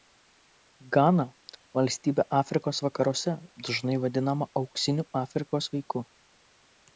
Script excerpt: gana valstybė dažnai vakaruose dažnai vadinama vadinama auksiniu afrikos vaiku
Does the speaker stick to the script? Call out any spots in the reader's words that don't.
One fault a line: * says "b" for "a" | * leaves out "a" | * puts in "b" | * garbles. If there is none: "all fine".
* says "afrikos" for "dažnai"
* leaves out "vadinama"